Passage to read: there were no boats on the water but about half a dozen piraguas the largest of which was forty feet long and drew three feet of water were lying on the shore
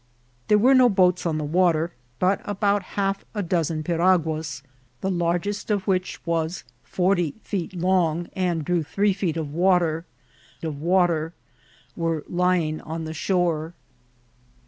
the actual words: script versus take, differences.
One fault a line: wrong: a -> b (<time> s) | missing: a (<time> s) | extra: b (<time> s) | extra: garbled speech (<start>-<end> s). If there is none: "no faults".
extra: of water (10.6 s)